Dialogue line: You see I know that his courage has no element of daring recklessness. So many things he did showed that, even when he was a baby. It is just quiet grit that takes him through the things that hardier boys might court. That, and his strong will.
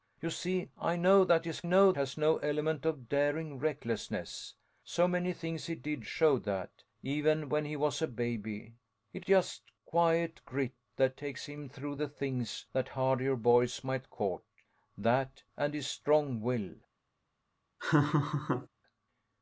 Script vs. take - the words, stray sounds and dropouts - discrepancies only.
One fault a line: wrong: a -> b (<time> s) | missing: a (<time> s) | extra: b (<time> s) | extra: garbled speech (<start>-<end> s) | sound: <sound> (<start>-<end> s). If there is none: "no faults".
wrong: courage -> know (1.6 s)
missing: is (9.3 s)
sound: laugh (17.8-18.7 s)